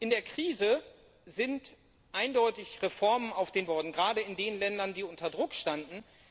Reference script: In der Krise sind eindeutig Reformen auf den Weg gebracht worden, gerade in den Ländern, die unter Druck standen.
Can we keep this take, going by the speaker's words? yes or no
no